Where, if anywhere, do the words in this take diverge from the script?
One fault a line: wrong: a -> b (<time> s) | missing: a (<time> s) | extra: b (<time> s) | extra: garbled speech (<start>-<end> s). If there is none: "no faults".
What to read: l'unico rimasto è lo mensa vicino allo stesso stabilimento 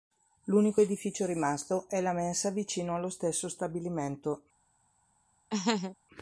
extra: edificio (0.8 s)
wrong: lo -> la (2.0 s)